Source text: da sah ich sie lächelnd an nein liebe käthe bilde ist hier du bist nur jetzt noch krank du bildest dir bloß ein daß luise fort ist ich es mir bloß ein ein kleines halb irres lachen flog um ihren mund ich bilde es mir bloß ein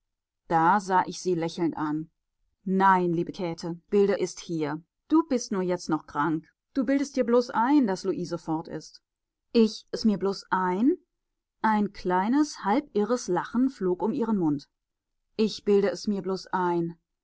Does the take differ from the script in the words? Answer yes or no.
no